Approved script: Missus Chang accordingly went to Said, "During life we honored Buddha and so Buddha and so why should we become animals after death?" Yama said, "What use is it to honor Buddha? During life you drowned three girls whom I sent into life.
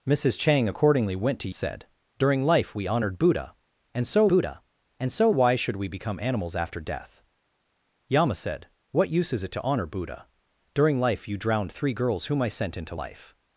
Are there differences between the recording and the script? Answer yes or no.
no